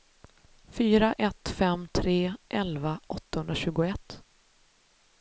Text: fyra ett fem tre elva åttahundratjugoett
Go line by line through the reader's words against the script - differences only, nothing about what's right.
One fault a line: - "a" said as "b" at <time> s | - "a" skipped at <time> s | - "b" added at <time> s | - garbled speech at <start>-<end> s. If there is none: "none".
none